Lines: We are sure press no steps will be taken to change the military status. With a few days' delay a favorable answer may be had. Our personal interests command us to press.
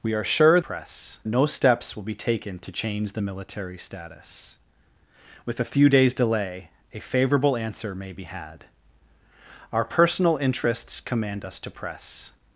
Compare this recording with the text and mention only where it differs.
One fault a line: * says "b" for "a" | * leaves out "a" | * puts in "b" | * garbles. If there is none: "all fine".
all fine